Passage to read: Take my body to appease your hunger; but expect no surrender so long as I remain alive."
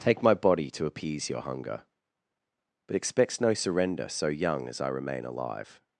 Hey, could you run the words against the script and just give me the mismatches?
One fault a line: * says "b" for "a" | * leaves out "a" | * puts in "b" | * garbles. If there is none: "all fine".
* says "expects" for "expect"
* says "young" for "long"